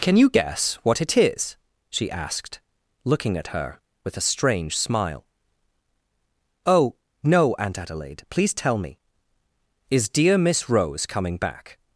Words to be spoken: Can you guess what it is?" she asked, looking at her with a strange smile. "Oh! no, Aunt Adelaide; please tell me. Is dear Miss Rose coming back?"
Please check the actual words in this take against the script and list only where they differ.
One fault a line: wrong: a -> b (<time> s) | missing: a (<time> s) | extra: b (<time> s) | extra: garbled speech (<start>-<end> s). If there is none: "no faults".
no faults